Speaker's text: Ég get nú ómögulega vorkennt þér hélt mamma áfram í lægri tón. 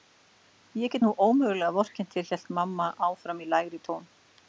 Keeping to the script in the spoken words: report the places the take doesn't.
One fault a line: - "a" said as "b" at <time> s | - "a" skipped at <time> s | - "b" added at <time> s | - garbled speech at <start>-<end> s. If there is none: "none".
none